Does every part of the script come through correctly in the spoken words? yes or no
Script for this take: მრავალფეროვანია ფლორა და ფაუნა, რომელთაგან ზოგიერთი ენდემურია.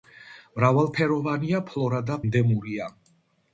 no